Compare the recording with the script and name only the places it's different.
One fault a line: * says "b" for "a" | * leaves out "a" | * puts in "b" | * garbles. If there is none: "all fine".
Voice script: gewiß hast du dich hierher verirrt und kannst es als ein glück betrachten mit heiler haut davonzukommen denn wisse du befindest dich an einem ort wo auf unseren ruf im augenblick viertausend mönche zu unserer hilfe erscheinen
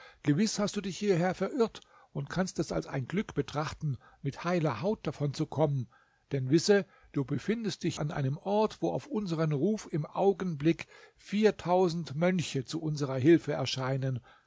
all fine